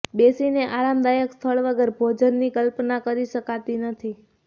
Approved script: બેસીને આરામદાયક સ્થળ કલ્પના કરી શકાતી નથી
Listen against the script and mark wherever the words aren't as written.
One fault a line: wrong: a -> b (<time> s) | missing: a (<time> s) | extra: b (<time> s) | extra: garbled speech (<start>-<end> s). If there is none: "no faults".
extra: વગર ભોજનની (1.6 s)